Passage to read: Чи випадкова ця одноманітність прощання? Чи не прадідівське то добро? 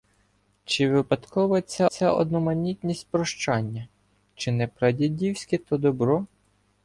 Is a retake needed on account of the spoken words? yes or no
yes